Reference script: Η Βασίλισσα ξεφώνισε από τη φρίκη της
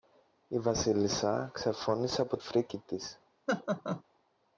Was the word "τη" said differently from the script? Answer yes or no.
yes